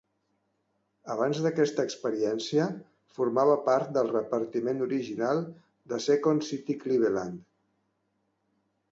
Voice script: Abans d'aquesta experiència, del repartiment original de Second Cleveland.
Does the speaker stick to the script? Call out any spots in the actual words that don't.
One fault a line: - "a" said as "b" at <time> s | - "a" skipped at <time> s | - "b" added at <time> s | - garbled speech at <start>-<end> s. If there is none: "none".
- "formava part" added at 3.2 s
- "City" added at 6.5 s